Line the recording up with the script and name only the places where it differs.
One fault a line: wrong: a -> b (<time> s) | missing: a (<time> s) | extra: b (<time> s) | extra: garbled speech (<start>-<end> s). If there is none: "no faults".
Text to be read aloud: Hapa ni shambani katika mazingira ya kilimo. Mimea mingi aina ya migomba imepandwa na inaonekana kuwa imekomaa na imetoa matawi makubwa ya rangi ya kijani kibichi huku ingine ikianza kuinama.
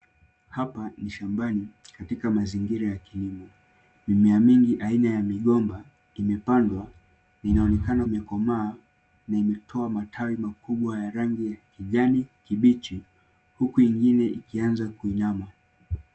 missing: kuwa (8.1 s)